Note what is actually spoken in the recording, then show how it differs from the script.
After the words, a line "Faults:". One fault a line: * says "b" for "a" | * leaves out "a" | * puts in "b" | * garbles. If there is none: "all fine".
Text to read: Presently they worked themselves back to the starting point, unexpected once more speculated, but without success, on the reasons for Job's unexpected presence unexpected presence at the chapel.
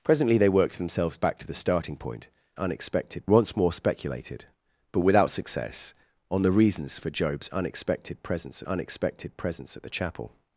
Presently they worked themselves back to the starting point, unexpected once more speculated, but without success, on the reasons for Job's unexpected presence unexpected presence at the chapel.
Faults:
all fine